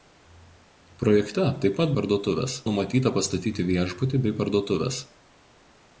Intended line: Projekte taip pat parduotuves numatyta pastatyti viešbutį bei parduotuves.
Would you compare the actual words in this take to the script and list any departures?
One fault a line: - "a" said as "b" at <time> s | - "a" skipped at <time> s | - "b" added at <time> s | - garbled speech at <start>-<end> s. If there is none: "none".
none